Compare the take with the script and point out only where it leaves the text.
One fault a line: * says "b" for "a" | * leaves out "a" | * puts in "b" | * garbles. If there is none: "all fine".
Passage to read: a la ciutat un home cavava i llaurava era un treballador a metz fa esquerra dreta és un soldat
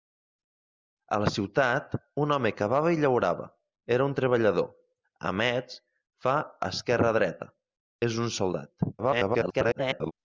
* garbles